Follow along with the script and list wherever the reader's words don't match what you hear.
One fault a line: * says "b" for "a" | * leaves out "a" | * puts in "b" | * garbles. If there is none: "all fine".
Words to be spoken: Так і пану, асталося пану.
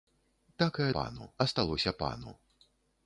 all fine